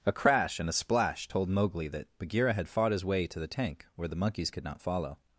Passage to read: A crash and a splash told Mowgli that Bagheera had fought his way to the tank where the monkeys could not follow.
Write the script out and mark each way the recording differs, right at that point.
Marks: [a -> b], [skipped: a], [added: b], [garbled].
A crash and a splash told Mowgli that Bagheera had fought his way to the tank where the monkeys could not follow.